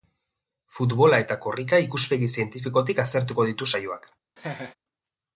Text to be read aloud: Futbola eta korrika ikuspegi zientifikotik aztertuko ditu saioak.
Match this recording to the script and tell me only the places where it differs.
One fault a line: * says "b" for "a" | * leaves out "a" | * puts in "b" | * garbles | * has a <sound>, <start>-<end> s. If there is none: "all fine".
* has a laugh, 4.4-4.8 s